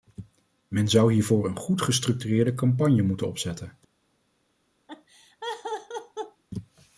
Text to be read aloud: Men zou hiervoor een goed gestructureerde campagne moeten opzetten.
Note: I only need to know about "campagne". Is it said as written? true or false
true